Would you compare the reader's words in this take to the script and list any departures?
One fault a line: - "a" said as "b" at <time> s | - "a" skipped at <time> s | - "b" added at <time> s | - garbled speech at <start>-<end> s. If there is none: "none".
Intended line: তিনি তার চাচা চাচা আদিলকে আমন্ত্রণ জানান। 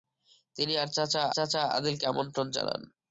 none